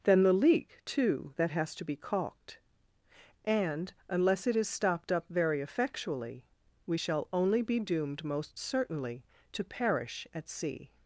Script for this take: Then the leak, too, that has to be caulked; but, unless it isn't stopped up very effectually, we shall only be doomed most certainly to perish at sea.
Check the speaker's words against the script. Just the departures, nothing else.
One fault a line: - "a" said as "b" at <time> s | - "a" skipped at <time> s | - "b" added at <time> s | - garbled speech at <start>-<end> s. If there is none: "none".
- "but" said as "and" at 3.5 s
- "isn't" said as "is" at 4.5 s